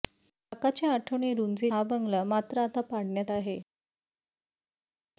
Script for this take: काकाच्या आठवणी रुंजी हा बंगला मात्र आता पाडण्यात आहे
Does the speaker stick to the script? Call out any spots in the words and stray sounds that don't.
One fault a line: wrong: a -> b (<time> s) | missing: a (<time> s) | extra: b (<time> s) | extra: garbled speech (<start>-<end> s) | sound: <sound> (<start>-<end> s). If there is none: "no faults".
no faults